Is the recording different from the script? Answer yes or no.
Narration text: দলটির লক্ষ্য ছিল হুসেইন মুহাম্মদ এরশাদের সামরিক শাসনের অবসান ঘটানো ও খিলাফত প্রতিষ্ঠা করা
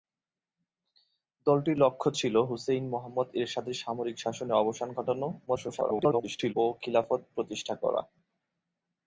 yes